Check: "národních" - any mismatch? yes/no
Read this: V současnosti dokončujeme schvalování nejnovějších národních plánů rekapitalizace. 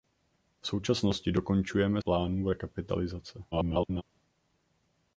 yes